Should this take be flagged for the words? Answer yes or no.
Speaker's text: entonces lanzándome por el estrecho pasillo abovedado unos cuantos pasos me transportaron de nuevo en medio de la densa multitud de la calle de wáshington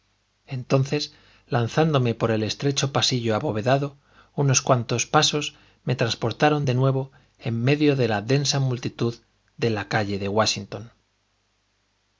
no